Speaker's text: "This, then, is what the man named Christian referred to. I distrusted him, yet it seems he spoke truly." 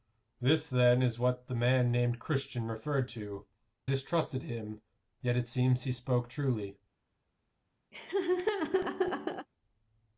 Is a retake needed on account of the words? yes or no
yes